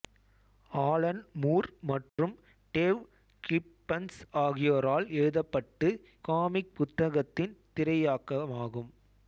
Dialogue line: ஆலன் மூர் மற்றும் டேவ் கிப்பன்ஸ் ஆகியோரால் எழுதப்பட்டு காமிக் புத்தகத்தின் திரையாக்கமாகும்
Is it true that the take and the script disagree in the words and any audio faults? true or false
true